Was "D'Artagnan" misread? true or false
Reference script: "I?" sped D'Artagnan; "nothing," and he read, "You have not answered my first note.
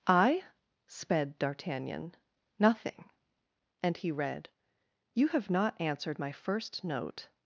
false